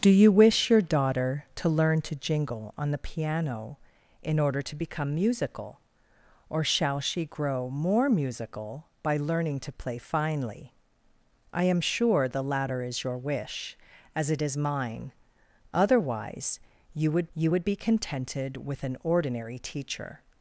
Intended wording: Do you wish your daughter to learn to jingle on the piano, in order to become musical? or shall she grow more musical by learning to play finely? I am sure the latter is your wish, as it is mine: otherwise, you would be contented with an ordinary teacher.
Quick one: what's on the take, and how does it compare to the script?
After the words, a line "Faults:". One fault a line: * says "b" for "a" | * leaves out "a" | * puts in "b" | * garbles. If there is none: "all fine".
Do you wish your daughter to learn to jingle on the piano, in order to become musical? or shall she grow more musical by learning to play finely? I am sure the latter is your wish, as it is mine: otherwise, you would you would be contented with an ordinary teacher.
Faults:
* puts in "you would"